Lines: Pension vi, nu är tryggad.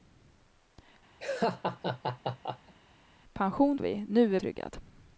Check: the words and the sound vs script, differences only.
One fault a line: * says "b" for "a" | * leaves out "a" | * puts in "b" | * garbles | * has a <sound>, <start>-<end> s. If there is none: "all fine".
* has a laugh, 1.2-2.7 s